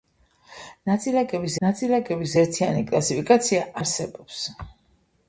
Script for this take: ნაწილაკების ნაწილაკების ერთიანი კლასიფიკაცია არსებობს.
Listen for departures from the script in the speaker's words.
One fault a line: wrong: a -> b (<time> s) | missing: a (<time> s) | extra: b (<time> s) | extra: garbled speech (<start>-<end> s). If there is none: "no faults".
no faults